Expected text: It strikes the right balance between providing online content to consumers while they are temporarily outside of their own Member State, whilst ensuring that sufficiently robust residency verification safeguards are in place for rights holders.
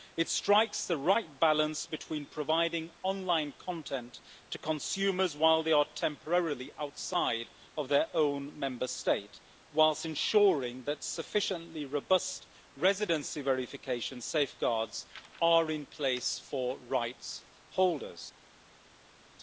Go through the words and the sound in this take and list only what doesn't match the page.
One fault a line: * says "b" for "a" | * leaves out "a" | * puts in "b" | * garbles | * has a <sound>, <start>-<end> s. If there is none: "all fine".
all fine